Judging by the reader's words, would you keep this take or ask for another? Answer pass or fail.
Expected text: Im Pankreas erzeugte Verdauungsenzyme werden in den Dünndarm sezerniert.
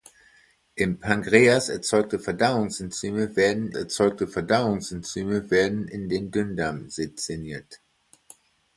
fail